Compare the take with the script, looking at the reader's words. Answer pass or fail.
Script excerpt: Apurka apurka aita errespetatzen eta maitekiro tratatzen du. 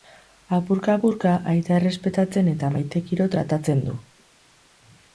pass